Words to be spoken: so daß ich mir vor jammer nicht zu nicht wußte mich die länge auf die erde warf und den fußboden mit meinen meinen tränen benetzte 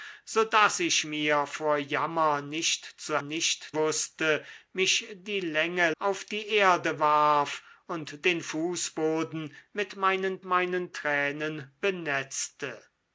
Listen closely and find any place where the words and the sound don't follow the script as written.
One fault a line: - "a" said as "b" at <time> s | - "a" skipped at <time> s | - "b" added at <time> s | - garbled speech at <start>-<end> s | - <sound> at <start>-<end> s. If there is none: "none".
none